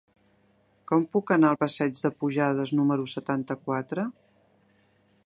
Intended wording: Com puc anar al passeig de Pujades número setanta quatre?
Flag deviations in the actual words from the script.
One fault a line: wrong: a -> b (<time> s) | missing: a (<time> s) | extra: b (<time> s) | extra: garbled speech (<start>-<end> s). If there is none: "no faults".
no faults